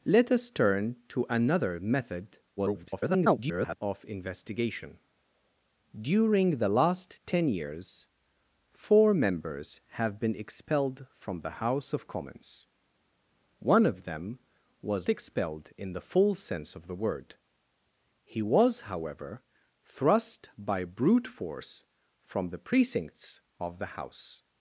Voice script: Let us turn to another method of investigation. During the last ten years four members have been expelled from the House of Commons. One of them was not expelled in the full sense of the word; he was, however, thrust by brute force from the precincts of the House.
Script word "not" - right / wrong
wrong